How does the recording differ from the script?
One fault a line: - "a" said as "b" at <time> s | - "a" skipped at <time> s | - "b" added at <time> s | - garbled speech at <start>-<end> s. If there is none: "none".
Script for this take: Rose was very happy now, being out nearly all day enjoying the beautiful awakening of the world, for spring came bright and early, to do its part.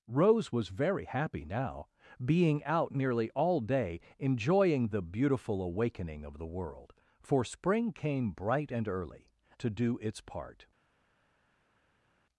none